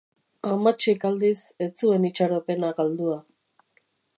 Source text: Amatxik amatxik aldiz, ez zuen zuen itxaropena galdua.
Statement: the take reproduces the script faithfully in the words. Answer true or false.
false